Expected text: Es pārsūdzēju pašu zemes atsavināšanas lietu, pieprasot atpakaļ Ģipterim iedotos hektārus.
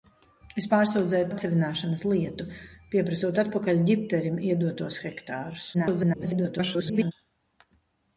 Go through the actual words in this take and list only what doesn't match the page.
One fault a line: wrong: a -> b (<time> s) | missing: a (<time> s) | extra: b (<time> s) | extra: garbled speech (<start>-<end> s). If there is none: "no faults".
missing: pašu zemes (1.3 s)
extra: garbled speech (5.7-7.1 s)